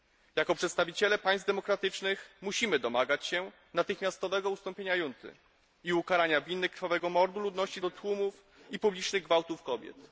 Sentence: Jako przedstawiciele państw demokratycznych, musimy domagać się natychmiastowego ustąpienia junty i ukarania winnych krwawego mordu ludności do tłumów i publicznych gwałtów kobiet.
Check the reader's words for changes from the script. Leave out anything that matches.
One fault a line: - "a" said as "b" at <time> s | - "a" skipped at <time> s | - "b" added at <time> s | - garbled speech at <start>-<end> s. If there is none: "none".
none